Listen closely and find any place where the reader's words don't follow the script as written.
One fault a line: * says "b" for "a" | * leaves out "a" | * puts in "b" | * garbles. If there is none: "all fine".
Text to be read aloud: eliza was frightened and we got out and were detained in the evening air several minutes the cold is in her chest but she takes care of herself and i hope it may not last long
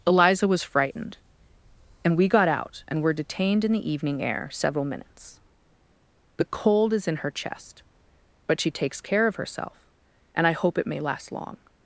* leaves out "not"